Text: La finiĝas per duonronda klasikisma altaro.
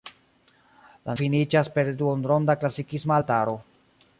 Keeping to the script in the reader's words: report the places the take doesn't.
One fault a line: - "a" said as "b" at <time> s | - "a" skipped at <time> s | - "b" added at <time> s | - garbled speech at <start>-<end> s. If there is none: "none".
none